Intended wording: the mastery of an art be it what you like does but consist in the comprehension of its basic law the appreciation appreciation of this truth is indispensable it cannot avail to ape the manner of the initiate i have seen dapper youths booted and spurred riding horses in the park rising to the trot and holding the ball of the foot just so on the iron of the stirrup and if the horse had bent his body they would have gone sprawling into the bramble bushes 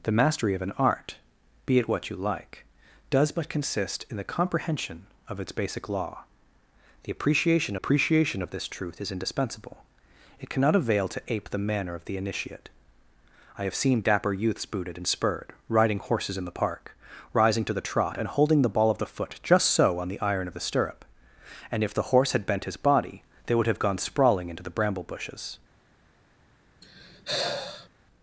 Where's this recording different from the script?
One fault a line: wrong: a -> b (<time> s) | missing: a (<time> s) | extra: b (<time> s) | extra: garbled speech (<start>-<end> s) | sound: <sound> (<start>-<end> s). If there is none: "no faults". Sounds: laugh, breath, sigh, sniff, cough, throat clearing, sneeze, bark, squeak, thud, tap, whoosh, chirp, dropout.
sound: sigh (26.8-27.9 s)